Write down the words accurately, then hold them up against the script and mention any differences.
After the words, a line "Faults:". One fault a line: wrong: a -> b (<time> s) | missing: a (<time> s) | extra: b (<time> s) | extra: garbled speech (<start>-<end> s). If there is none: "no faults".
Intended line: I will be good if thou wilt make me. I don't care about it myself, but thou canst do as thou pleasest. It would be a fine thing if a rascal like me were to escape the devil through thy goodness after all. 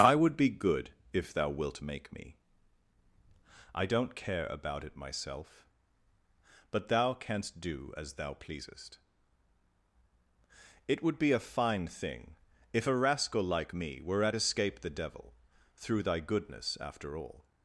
I would be good if thou wilt make me. I don't care about it myself, but thou canst do as thou pleasest. It would be a fine thing if a rascal like me were at escape the devil through thy goodness after all.
Faults:
wrong: will -> would (0.1 s)
wrong: to -> at (14.2 s)